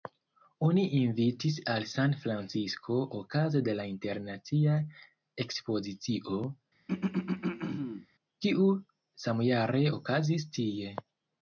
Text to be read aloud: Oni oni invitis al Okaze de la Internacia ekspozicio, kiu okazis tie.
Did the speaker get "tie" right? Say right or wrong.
right